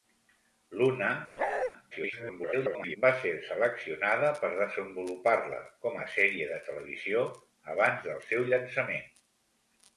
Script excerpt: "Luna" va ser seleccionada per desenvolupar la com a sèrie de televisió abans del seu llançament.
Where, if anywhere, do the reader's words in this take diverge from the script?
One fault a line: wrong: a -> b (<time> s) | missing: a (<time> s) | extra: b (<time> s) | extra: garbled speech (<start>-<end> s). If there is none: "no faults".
extra: garbled speech (1.9-3.0 s)